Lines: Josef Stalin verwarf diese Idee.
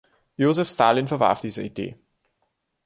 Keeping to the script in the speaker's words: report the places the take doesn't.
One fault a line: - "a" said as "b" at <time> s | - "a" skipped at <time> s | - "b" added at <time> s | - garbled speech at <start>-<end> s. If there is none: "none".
none